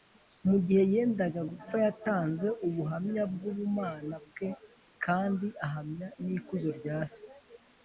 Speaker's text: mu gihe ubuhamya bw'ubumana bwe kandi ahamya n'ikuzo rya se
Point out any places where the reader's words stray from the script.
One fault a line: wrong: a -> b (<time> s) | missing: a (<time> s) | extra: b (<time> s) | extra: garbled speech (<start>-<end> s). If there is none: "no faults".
extra: yendaga gupfa yatanze (0.9 s)